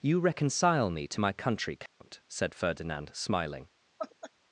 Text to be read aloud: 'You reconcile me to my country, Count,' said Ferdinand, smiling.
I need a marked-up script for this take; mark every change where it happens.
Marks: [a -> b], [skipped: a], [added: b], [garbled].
'You reconcile me to my country, Count,' said Ferdinand, smiling.